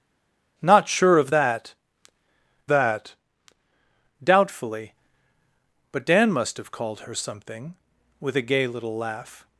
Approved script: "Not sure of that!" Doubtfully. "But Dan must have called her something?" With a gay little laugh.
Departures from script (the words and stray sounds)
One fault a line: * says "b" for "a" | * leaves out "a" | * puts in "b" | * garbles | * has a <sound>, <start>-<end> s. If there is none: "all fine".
* puts in "that"